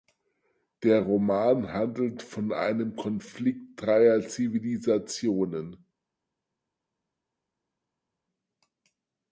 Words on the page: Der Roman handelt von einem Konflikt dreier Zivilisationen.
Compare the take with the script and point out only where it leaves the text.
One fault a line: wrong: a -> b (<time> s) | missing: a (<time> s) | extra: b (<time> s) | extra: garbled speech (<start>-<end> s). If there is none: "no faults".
no faults